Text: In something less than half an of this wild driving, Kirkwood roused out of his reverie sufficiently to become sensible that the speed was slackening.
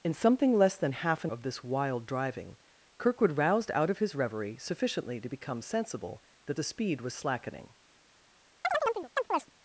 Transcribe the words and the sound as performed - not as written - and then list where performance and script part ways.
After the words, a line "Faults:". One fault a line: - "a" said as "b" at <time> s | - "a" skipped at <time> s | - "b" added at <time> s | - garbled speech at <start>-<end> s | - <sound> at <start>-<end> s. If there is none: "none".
In something less than half an of this wild driving, Kirkwood roused out of his reverie sufficiently to become sensible that the speed was slackening.
Faults:
- chirp at 8.6-9.5 s